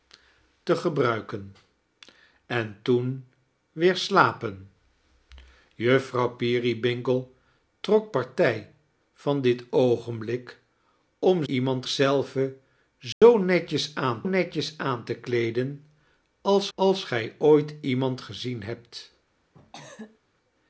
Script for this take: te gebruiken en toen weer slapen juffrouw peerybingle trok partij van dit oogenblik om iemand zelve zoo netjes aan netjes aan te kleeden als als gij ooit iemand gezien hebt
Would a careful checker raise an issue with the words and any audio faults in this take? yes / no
yes